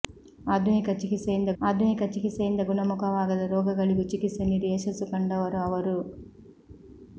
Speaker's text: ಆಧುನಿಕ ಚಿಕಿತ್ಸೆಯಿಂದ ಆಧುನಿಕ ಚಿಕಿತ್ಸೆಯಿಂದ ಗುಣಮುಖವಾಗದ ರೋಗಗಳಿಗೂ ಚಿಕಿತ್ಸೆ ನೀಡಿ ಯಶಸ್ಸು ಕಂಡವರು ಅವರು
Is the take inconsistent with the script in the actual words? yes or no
no